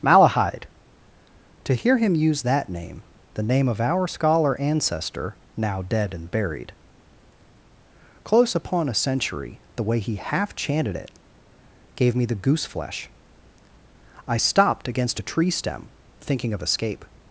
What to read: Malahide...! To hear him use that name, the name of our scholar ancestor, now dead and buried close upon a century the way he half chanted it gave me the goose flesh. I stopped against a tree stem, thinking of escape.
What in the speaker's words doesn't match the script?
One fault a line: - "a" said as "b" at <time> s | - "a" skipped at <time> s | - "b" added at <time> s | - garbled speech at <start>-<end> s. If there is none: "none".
none